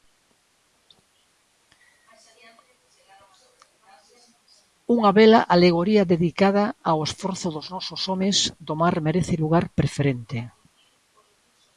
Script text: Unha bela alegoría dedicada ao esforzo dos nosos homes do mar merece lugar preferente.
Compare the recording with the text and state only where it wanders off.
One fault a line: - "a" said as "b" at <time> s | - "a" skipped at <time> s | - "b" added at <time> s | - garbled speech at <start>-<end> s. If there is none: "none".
none